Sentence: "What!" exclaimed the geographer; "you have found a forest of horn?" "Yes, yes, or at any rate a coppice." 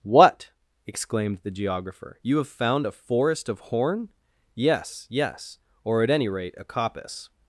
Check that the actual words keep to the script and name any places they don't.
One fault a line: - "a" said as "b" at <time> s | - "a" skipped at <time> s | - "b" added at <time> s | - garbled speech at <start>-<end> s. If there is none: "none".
none